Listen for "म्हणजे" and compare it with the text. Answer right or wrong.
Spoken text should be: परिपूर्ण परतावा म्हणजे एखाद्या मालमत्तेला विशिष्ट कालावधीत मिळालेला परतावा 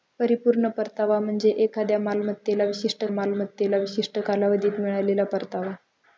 right